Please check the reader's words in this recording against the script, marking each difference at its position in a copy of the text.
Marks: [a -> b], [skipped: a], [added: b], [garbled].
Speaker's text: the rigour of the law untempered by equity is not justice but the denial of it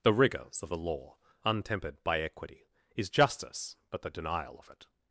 the [rigour -> rigours] of the law untempered by equity is [skipped: not] justice but the denial of it